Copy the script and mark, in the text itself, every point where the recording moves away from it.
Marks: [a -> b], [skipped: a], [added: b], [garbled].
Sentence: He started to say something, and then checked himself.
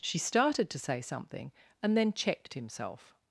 [He -> She] started to say something, and then checked himself.